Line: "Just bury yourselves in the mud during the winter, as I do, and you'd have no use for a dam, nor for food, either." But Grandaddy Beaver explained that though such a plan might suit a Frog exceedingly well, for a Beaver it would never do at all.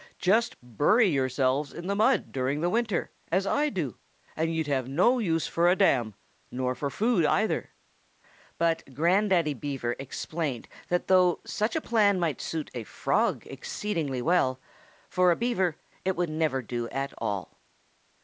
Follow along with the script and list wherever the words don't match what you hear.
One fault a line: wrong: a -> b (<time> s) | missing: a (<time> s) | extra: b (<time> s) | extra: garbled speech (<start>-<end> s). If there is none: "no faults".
no faults